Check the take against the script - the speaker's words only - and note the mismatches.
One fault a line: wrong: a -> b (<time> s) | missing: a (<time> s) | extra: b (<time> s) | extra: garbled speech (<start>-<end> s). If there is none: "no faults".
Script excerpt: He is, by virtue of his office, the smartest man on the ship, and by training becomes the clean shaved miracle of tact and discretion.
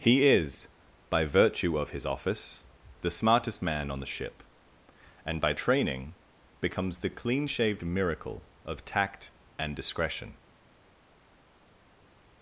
no faults